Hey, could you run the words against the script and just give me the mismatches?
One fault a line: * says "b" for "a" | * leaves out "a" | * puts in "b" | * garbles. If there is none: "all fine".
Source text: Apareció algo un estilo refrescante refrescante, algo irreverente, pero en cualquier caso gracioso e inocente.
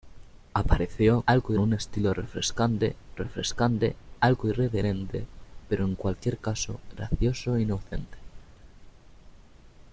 all fine